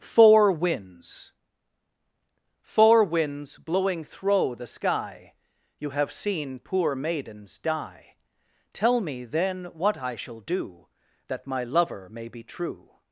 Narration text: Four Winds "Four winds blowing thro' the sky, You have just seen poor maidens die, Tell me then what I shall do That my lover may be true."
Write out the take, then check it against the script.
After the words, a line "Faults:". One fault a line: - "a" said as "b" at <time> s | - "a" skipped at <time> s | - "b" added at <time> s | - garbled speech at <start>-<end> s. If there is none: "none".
Four Winds "Four winds blowing thro' the sky, You have seen poor maidens die, Tell me then what I shall do That my lover may be true."
Faults:
- "just" skipped at 6.1 s